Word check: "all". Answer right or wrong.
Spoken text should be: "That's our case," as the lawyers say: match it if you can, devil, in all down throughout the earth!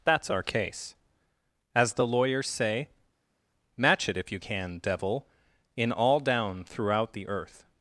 right